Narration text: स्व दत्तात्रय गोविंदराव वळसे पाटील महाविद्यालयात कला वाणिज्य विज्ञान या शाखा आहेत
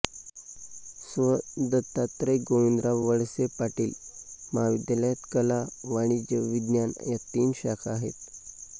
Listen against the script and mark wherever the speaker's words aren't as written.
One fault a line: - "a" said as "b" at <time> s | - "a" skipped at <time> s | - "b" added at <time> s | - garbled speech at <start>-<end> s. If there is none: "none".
- "तीन" added at 7.2 s